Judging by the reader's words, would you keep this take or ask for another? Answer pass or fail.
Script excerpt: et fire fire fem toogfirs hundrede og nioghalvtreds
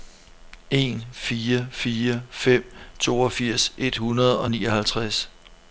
fail